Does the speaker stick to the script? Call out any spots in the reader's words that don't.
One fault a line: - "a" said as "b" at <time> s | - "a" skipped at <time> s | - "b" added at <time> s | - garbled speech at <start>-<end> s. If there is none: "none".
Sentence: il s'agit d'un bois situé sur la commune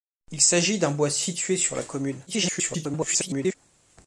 - garbled speech at 2.3-3.5 s